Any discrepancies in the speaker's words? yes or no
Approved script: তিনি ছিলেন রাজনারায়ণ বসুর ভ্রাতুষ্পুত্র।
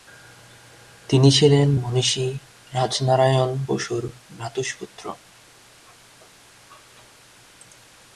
yes